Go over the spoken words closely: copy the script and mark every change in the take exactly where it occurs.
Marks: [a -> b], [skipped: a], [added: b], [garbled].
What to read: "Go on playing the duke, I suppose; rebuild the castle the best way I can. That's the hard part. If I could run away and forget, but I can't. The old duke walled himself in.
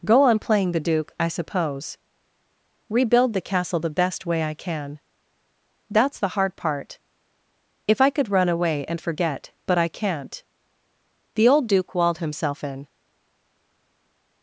"Go on playing the duke, I suppose; rebuild the castle the best way I can. That's the hard part. If I could run away and forget, but I can't. The old duke walled himself in.